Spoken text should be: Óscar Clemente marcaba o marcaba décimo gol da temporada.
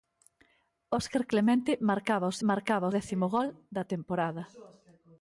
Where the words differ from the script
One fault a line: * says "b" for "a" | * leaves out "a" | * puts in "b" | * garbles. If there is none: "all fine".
all fine